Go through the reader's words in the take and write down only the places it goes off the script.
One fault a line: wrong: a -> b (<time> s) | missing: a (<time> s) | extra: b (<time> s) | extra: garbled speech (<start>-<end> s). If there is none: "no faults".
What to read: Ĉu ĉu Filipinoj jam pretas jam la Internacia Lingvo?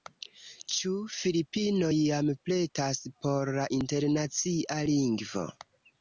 missing: ĉu (0.9 s)
wrong: jam -> por (3.3 s)